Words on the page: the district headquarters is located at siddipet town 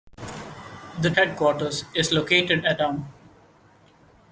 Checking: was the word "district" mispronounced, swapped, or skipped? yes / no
yes